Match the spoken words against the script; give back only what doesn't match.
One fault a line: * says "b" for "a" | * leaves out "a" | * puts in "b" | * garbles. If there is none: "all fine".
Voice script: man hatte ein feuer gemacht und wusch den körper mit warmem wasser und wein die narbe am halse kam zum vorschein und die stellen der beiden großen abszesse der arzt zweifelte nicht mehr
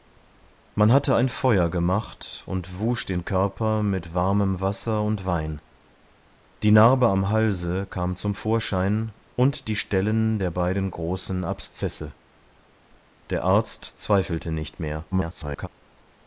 * garbles